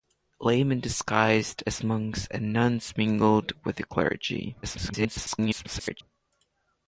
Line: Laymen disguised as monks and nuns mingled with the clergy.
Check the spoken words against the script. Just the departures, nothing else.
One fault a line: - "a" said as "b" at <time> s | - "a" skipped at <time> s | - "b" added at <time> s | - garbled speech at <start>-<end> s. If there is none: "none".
- garbled speech at 4.6-6.0 s